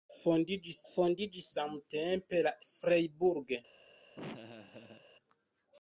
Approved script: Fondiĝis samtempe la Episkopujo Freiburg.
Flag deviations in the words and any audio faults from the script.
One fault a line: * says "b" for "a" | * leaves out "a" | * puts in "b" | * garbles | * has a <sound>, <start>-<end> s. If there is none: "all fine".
* puts in "fondiĝis"
* leaves out "Episkopujo"
* has a laugh, 4.2-5.1 s